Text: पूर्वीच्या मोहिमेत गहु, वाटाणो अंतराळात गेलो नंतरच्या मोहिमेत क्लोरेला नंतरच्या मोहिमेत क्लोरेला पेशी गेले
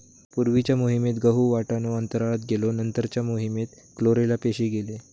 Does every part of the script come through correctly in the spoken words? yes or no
no